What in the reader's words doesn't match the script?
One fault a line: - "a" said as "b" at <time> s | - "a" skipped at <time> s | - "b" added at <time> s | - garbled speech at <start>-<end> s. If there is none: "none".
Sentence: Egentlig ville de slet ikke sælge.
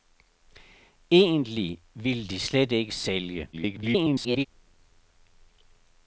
- garbled speech at 3.5-4.5 s